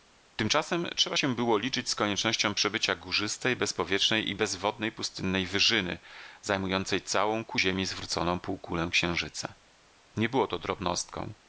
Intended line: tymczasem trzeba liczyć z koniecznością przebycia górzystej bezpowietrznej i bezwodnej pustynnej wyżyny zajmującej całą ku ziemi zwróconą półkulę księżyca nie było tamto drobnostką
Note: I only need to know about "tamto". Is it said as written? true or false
false